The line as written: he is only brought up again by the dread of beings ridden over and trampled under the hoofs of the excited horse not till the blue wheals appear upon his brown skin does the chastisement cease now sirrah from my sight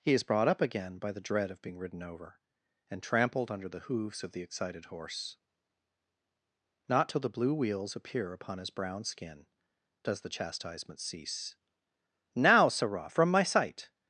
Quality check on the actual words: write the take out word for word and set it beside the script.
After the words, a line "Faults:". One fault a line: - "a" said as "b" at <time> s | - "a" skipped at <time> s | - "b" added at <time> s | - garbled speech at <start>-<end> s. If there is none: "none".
he is brought up again by the dread of being ridden over and trampled under the hoofs of the excited horse not till the blue wheals appear upon his brown skin does the chastisement cease now sirrah from my sight
Faults:
- "only" skipped at 0.2 s
- "beings" said as "being" at 1.6 s